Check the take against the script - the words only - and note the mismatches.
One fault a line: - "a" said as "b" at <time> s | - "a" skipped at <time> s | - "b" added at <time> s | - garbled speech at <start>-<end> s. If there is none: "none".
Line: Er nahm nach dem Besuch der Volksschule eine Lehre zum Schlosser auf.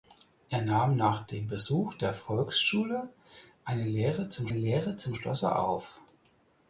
- "Lehre zum" added at 4.5 s